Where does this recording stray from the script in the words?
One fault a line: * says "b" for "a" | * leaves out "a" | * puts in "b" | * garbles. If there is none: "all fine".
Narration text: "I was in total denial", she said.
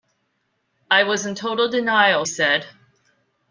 * leaves out "she"